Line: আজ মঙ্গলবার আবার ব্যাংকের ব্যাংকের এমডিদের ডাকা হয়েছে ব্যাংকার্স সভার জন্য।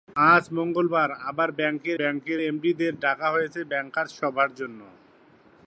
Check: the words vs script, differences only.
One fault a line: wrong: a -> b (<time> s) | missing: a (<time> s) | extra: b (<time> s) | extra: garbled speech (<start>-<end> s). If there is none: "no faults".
no faults